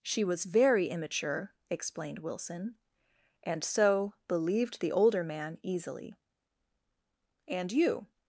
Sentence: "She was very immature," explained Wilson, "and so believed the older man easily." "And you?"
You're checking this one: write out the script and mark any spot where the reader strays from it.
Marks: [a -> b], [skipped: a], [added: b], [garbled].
"She was very immature," explained Wilson, "and so believed the older man easily." "And you?"